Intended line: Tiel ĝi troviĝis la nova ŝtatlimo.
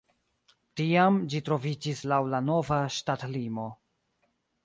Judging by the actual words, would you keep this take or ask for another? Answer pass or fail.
fail